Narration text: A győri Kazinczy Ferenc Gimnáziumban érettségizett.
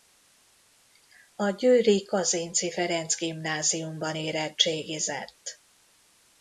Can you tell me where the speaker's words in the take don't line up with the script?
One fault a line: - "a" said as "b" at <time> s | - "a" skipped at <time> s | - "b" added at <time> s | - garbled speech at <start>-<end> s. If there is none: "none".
none